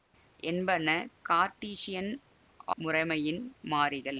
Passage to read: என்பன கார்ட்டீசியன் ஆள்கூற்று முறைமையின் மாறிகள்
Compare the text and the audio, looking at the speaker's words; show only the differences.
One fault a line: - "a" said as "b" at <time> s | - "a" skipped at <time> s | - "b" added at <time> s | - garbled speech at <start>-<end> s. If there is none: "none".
- "ஆள்கூற்று" skipped at 2.1 s